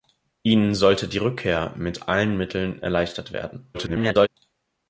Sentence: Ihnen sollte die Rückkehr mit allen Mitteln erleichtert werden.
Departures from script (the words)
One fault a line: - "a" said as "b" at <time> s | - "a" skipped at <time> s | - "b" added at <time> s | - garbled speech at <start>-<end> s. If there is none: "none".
- garbled speech at 3.7-4.3 s